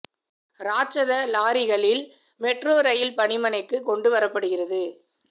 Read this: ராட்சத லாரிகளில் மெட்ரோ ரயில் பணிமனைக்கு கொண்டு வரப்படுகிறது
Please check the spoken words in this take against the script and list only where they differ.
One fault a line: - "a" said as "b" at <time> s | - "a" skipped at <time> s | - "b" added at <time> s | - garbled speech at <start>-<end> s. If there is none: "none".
none